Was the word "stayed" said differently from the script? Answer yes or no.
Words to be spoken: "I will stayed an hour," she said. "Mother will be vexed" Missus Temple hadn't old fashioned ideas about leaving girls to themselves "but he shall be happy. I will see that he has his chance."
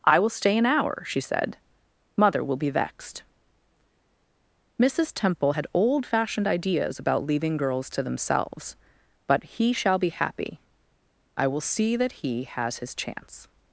yes